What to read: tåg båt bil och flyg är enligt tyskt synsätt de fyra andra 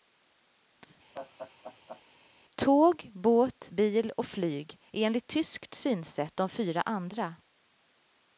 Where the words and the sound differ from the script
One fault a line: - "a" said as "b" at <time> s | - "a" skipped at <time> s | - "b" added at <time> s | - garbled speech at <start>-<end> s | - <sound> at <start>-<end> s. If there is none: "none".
- laugh at 1.1-2.0 s